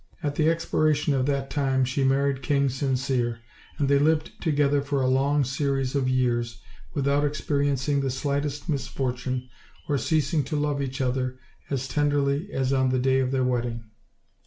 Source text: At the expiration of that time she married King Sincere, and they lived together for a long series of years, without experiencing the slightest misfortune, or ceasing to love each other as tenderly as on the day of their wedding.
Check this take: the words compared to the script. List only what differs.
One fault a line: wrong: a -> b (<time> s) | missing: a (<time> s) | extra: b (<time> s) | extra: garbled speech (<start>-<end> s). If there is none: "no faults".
no faults